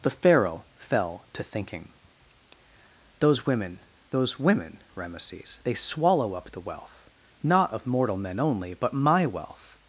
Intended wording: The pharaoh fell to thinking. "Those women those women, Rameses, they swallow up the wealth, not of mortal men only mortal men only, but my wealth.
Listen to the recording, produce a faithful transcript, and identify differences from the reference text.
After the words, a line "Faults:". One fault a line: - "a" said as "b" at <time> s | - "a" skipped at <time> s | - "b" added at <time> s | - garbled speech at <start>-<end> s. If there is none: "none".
The pharaoh fell to thinking. "Those women those women, Rameses, they swallow up the wealth, not of mortal men only, but my wealth.
Faults:
- "mortal men only" skipped at 8.7 s